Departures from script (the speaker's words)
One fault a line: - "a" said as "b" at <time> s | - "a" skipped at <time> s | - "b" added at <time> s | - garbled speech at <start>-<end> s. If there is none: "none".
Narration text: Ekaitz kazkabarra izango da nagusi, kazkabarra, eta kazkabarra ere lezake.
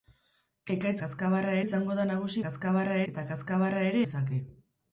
none